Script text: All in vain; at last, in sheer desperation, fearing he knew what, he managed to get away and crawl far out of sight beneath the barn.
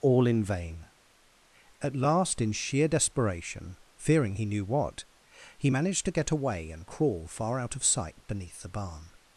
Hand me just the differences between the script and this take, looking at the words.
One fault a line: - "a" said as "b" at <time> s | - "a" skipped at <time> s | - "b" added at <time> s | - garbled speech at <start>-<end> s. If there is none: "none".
none